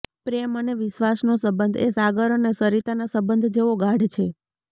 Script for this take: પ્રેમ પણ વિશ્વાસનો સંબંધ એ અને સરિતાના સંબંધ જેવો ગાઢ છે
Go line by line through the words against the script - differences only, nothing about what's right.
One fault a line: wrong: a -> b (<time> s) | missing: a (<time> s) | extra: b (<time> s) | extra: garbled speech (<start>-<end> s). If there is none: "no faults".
wrong: પણ -> અને (0.6 s)
extra: સાગર (1.9 s)